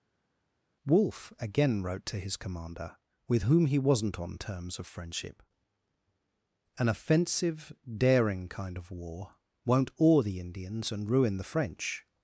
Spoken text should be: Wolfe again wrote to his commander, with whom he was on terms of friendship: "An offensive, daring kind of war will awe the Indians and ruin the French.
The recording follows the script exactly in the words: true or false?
false